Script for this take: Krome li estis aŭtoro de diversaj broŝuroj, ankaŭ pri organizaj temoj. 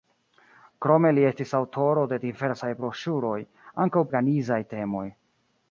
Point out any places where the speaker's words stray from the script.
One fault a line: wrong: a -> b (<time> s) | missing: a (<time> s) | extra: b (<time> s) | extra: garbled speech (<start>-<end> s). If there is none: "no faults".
missing: pri (4.1 s)